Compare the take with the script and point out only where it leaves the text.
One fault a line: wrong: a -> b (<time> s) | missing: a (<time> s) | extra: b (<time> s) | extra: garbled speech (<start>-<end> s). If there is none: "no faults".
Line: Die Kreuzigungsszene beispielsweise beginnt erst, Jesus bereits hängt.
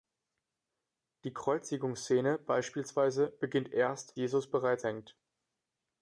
no faults